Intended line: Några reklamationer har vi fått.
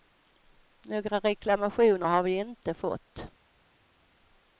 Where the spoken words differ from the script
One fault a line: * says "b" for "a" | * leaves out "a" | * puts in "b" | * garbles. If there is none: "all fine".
* puts in "inte"